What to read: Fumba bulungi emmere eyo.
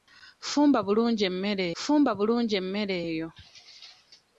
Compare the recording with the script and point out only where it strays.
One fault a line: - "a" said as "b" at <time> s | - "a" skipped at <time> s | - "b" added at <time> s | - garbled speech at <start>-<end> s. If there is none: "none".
- "fumba bulungi emmere" added at 1.8 s